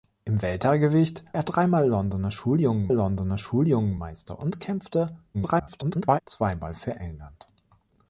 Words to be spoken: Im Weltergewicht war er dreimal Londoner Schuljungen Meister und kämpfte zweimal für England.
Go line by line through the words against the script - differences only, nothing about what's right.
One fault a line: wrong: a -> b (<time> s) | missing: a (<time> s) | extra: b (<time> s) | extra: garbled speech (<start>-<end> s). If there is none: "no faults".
missing: war (1.3 s)
extra: Londoner Schuljungen (2.9 s)
extra: garbled speech (5.3-6.2 s)